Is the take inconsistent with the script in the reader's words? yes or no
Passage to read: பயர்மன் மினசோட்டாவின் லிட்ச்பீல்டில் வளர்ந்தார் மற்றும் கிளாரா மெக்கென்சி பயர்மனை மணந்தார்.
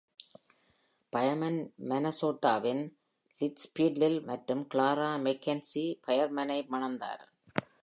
yes